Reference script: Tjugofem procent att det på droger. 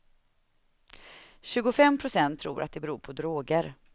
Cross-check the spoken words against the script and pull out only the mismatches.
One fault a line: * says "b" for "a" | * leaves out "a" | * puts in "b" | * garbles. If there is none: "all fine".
* puts in "tror"
* puts in "beror"